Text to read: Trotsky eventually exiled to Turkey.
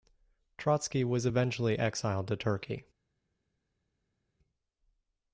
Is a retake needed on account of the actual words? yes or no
yes